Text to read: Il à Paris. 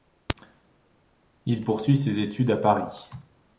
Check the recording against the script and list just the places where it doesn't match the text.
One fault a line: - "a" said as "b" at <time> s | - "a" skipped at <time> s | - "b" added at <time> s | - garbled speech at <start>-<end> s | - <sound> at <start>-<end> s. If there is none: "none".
- "poursuit ses études" added at 1.6 s